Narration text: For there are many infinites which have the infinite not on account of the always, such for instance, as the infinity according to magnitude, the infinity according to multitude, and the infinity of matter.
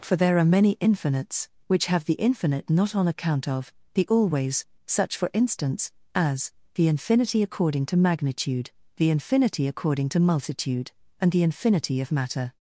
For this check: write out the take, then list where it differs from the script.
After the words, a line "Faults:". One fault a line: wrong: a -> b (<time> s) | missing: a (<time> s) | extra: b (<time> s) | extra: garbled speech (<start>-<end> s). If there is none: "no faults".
For there are many infinites which have the infinite not on account of the always, such for instance, as the infinity according to magnitude, the infinity according to multitude, and the infinity of matter.
Faults:
no faults